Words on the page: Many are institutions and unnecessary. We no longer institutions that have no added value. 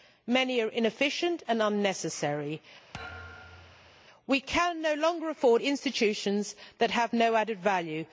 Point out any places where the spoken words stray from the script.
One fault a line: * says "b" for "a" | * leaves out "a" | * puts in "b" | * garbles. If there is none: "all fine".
* says "inefficient" for "institutions"
* puts in "can"
* puts in "afford"